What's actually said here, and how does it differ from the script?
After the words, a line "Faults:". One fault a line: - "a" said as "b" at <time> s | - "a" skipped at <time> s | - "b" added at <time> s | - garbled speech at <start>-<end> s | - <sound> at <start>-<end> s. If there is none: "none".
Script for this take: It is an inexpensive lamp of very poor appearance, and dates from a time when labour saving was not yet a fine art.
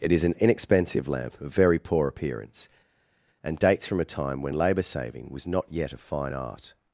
It is an inexpensive lamp of very poor appearance, and dates from a time when labour saving was not yet a fine art.
Faults:
none